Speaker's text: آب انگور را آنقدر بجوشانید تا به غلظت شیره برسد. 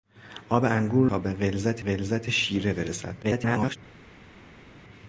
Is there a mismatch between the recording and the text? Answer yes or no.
yes